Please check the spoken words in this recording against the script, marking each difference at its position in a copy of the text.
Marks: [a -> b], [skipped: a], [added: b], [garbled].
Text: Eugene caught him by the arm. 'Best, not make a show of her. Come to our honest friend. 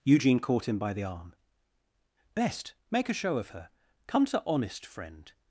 Eugene caught him by the arm. 'Best, [skipped: not] make a show of her. Come to [skipped: our] honest friend.